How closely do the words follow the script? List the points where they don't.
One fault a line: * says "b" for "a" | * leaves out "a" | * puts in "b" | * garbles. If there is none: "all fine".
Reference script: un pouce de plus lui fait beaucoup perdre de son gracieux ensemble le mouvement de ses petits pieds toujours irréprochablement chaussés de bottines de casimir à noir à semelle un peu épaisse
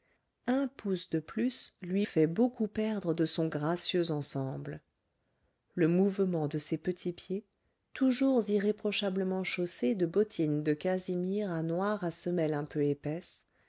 all fine